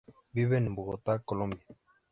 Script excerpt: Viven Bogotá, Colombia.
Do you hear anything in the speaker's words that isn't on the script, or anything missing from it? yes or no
yes